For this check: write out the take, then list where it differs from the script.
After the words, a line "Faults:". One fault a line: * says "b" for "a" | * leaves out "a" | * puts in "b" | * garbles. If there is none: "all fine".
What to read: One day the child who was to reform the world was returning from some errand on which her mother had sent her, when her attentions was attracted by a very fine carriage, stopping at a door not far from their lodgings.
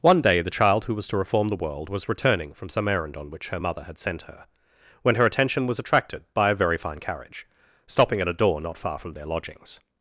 One day the child who was to reform the world was returning from some errand on which her mother had sent her, when her attention was attracted by a very fine carriage, stopping at a door not far from their lodgings.
Faults:
* says "attention" for "attentions"